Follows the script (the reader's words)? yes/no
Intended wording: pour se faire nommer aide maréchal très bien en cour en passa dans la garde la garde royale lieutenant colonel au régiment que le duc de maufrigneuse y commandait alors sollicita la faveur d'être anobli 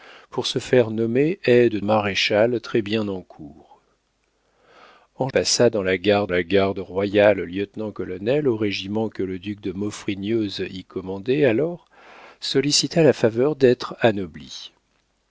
yes